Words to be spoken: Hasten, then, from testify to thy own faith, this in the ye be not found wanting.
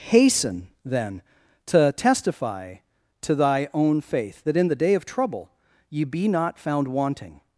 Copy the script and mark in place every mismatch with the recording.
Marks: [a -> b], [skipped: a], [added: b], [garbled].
Hasten, then, [from -> to] testify to thy own faith, [this -> that] in the [added: day of trouble] ye be not found wanting.